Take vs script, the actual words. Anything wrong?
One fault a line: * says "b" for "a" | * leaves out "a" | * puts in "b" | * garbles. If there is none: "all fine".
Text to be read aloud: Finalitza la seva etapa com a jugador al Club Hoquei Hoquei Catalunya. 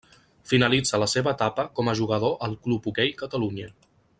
* leaves out "Hoquei"